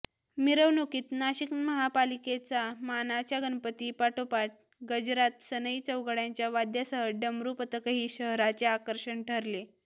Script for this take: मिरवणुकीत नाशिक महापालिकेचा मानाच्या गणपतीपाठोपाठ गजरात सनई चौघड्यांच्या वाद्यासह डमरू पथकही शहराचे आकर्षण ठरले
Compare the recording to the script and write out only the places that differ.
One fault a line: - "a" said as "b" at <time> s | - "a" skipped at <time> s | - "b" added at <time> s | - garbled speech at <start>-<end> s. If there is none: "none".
none